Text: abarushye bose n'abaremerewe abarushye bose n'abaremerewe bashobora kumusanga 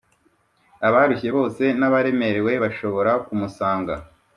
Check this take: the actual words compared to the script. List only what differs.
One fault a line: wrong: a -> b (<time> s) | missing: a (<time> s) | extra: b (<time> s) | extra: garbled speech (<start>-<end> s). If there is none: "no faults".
missing: abarushye bose n'abaremerewe (2.5 s)